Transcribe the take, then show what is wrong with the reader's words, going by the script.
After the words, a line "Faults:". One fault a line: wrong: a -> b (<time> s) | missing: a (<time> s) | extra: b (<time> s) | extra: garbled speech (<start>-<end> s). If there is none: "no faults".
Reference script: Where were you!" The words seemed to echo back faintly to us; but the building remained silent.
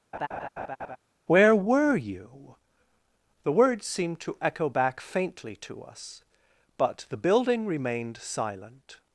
Where were you!" The words seemed to echo back faintly to us; but the building remained silent.
Faults:
no faults